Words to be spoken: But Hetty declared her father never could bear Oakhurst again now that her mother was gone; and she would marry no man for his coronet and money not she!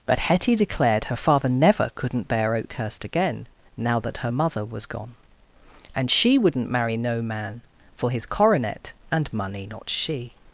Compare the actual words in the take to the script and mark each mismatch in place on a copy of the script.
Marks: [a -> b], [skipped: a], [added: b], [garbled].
But Hetty declared her father never [could -> couldn't] bear Oakhurst again now that her mother was gone; and she [would -> wouldn't] marry no man for his coronet and money not she!